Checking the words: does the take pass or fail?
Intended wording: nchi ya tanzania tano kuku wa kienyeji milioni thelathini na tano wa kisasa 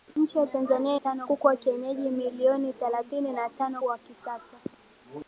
pass